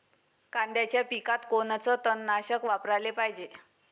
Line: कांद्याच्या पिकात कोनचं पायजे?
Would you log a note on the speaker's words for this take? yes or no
yes